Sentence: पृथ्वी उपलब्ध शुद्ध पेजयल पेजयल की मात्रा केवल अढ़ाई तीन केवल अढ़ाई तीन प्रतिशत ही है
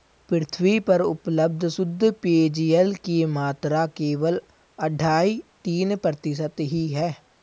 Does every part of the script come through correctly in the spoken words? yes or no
no